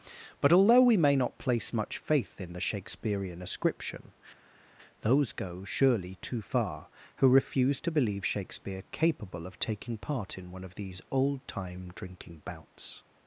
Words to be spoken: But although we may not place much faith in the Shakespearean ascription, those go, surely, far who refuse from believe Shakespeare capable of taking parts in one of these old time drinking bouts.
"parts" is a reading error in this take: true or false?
true